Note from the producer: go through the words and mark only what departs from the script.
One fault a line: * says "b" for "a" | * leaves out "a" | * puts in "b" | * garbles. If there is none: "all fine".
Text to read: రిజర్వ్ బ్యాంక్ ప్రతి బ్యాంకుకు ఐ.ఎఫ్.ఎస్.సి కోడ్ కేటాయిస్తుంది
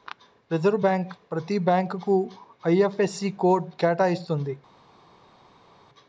all fine